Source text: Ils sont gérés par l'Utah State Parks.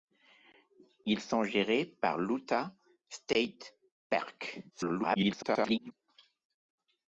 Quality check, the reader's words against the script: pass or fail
fail